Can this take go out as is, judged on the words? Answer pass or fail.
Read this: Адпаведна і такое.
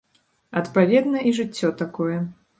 fail